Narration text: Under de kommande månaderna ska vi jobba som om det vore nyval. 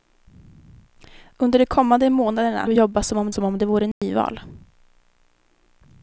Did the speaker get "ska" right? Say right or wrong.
wrong